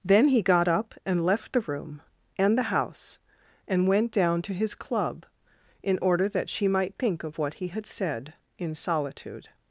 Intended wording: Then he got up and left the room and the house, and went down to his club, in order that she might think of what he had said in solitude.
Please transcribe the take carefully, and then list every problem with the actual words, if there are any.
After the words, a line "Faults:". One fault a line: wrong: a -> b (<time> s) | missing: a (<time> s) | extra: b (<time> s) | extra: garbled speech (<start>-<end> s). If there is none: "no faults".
Then he got up and left the room and the house, and went down to his club, in order that she might think of what he had said in solitude.
Faults:
no faults